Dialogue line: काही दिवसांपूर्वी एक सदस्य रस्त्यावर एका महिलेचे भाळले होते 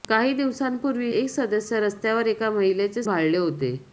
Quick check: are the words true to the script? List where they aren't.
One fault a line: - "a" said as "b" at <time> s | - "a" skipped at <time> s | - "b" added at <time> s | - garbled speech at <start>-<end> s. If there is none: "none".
none